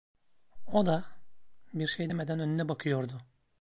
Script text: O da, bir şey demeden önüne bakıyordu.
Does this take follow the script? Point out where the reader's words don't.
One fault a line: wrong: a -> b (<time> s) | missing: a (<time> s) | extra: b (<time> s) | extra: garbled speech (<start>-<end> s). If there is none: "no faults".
no faults